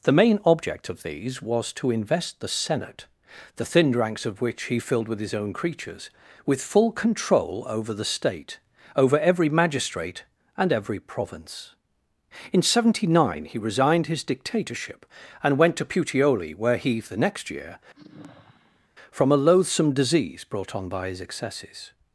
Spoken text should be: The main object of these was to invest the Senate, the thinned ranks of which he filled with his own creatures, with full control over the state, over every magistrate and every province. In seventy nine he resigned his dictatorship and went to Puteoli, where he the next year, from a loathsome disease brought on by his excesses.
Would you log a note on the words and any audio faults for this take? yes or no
yes